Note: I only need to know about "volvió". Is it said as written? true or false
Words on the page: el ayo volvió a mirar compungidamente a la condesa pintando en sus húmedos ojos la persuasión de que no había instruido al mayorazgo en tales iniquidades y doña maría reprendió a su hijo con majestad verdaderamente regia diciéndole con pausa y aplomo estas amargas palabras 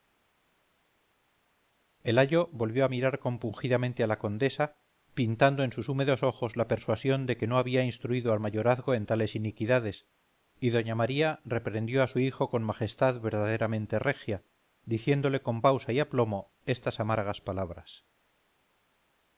true